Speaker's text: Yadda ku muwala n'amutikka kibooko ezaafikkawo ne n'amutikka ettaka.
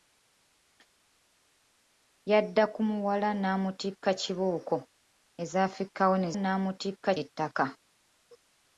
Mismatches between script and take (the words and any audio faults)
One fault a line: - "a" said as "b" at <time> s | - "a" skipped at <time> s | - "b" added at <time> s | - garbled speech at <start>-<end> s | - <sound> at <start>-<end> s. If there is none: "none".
none